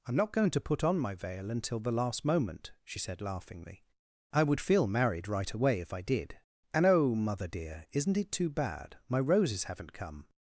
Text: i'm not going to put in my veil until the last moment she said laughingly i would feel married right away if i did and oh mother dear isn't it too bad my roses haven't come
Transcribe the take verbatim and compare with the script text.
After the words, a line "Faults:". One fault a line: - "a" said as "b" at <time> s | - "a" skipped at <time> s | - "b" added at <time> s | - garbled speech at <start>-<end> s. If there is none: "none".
i'm not going to put on my veil until the last moment she said laughingly i would feel married right away if i did and oh mother dear isn't it too bad my roses haven't come
Faults:
- "in" said as "on" at 0.8 s